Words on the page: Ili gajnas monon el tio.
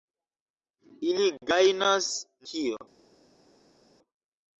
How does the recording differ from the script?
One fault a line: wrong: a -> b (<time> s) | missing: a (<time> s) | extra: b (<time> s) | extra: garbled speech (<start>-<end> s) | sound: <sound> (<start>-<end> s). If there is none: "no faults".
missing: monon el (2.1 s)